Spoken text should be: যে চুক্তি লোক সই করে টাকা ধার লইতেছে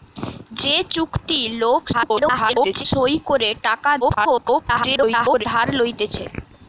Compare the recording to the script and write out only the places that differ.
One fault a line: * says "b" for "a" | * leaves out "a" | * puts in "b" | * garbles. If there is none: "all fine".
* garbles
* garbles